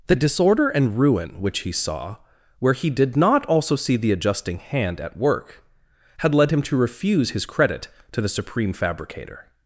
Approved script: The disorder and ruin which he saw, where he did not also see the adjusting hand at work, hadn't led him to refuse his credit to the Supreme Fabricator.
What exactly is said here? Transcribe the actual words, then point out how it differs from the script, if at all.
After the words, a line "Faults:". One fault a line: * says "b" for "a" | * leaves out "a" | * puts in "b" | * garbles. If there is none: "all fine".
The disorder and ruin which he saw, where he did not also see the adjusting hand at work, had led him to refuse his credit to the Supreme Fabricator.
Faults:
* says "had" for "hadn't"